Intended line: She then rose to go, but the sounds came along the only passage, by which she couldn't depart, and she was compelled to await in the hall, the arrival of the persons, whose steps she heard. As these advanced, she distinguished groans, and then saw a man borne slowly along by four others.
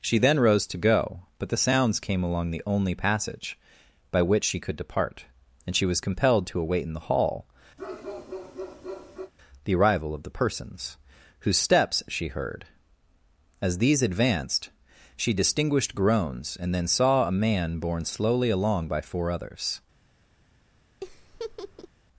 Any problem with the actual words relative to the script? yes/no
yes